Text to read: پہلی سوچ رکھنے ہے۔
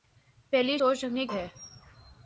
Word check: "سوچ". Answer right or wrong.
right